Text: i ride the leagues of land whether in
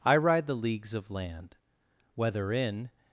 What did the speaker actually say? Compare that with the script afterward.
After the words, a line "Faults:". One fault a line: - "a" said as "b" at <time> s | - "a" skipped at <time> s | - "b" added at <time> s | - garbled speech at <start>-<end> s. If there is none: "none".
i ride the leagues of land whether in
Faults:
none